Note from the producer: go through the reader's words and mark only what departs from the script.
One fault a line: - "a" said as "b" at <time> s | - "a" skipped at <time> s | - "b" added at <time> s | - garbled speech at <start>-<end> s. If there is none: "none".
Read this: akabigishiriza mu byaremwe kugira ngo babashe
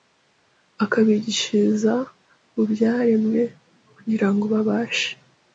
none